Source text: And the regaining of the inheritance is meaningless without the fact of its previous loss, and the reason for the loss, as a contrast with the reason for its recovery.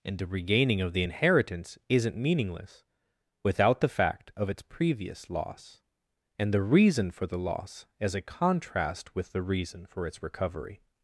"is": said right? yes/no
no